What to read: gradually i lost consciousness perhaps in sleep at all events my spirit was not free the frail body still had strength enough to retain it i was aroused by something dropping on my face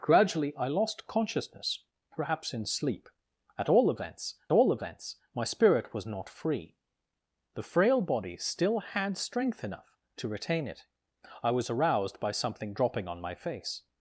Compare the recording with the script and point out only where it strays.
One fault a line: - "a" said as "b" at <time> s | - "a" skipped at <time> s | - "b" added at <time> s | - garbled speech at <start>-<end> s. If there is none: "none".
- "all events" added at 4.5 s